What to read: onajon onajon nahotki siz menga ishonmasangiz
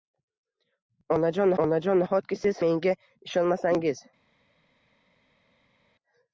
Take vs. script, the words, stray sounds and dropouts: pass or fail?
pass